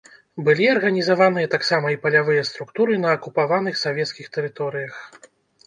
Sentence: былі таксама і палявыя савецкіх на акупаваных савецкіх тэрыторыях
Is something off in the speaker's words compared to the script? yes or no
yes